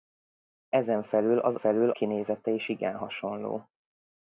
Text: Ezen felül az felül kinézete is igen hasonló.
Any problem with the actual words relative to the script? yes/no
no